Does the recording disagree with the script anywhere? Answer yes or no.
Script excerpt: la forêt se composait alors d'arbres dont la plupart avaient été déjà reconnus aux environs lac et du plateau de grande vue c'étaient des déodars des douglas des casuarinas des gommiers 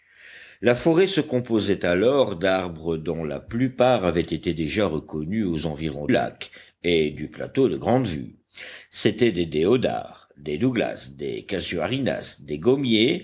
no